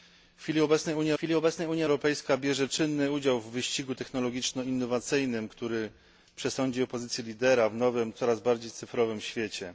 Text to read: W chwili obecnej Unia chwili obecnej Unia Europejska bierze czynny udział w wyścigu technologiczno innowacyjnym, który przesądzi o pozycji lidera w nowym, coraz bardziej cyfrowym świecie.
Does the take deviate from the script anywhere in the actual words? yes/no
no